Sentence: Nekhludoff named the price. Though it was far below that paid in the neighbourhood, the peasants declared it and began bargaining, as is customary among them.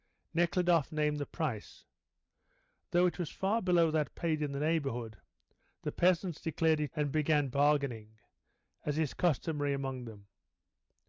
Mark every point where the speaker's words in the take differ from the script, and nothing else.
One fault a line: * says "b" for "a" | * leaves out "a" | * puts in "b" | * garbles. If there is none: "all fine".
all fine